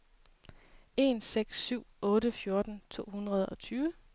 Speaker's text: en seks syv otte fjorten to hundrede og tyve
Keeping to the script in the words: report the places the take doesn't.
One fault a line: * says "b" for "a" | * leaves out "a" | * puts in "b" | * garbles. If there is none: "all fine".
all fine